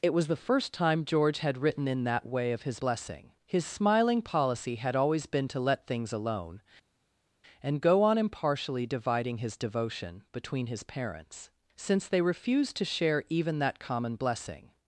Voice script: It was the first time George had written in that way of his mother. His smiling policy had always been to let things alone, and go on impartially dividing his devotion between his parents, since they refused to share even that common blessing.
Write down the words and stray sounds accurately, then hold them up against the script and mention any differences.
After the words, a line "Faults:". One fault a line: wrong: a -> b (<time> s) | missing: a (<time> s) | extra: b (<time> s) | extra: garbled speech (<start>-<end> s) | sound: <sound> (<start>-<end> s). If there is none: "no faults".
It was the first time George had written in that way of his blessing. His smiling policy had always been to let things alone, and go on impartially dividing his devotion between his parents, since they refused to share even that common blessing.
Faults:
wrong: mother -> blessing (2.8 s)